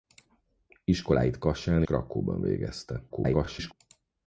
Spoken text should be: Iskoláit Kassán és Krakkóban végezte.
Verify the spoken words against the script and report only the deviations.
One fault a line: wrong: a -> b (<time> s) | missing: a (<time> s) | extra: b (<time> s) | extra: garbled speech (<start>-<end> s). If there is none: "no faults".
missing: és (1.8 s)
extra: garbled speech (3.1-3.7 s)